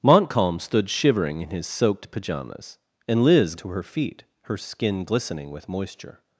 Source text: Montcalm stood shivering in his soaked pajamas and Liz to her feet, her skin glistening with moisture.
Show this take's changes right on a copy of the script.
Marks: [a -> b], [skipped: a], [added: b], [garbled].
Montcalm stood shivering in his soaked pajamas and Liz to her feet, her skin glistening with moisture.